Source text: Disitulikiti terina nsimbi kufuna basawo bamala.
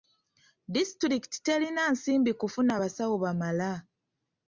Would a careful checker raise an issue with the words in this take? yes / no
no